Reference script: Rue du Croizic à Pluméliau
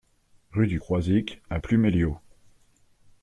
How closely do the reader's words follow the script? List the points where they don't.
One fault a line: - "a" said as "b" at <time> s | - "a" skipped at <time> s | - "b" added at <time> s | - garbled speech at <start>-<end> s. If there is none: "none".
none